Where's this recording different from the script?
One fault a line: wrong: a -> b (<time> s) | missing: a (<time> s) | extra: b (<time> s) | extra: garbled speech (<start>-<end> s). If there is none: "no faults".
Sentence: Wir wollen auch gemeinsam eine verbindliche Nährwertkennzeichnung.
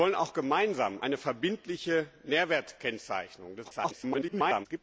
extra: garbled speech (3.6-4.7 s)